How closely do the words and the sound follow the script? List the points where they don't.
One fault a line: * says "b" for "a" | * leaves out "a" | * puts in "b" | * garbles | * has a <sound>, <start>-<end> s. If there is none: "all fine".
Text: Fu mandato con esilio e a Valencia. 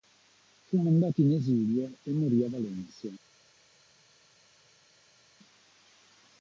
* says "in" for "con"
* puts in "morì"